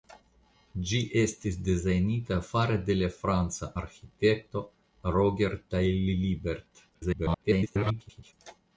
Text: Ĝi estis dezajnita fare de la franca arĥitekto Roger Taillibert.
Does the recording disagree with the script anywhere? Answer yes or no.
yes